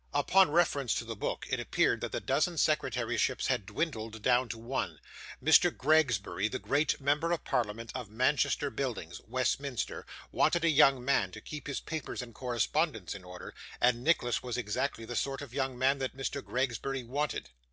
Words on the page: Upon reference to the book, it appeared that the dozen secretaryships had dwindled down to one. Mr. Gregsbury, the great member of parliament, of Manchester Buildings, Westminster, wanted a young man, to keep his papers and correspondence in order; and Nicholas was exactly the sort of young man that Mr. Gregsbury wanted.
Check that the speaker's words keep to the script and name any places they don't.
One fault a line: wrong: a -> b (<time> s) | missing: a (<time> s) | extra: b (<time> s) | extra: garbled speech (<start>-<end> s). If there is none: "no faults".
no faults